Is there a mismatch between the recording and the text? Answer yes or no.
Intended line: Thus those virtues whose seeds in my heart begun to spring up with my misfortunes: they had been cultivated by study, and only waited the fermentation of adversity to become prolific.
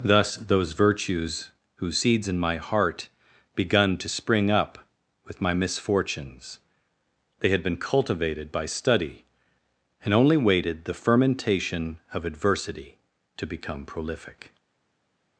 no